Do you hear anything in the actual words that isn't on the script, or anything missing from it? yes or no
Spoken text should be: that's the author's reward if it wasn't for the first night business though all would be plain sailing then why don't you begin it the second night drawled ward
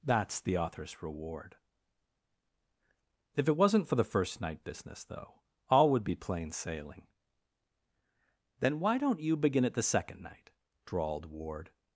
no